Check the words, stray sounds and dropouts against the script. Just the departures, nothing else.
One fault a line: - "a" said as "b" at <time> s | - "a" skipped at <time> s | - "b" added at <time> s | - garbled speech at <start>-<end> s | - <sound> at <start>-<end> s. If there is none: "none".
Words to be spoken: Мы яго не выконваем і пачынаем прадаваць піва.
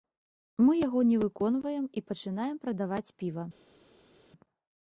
none